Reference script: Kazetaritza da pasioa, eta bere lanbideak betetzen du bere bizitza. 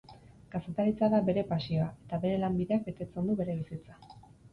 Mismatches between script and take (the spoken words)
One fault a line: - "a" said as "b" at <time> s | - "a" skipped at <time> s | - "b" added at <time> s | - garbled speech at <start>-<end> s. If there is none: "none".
- "bere" added at 1.3 s